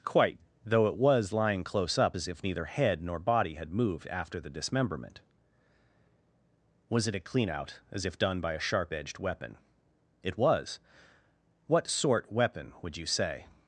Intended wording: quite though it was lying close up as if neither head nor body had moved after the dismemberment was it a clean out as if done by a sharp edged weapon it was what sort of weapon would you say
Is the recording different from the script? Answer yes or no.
yes